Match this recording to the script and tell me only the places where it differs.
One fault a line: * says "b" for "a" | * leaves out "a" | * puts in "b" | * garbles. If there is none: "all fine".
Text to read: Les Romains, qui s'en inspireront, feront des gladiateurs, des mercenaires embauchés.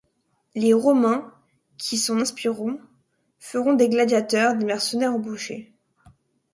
all fine